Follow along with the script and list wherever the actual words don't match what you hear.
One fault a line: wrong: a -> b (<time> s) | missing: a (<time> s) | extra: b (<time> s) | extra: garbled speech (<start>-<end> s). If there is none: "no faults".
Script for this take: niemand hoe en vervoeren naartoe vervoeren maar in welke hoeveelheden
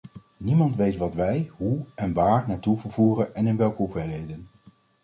extra: weet wat wij (0.8 s)
wrong: vervoeren -> waar (2.1 s)
wrong: maar -> en (3.3 s)